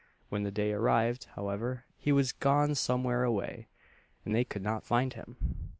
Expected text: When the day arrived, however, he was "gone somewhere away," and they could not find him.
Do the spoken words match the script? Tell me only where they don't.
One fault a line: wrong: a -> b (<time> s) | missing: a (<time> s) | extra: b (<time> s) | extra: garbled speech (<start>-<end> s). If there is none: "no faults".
no faults